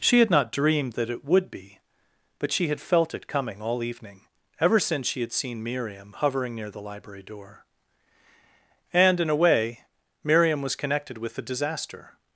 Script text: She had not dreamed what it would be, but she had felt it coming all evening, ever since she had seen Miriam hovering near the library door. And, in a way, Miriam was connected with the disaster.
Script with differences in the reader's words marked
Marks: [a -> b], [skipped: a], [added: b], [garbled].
She had not dreamed [what -> that] it would be, but she had felt it coming all evening, ever since she had seen Miriam hovering near the library door. And, in a way, Miriam was connected with the disaster.